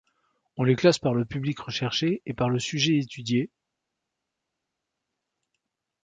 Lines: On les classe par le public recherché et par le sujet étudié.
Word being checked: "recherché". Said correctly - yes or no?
yes